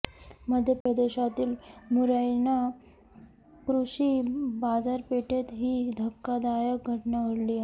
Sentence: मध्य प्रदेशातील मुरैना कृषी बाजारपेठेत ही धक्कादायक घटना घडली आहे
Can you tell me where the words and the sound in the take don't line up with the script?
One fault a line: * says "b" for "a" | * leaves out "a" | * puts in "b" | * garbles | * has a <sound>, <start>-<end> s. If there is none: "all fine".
* has a dropout, 0.8-0.9 s